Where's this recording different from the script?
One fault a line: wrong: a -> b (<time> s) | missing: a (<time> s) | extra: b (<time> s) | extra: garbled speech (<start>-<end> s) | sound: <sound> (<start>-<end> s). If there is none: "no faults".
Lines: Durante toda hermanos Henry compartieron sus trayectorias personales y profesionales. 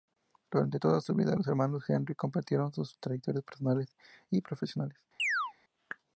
extra: su vida los (1.0 s)
sound: chirp (5.2-5.5 s)